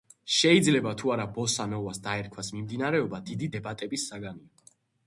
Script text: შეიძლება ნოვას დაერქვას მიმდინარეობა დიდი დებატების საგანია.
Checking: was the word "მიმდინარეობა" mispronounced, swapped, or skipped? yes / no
no